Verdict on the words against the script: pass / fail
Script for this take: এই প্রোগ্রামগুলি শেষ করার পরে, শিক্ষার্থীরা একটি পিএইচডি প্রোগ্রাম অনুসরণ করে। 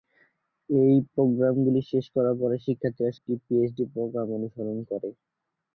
pass